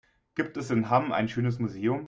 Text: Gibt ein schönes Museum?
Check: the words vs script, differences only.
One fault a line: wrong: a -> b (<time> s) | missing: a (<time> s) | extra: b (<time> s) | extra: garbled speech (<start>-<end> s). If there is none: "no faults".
extra: es in Hamm (0.6 s)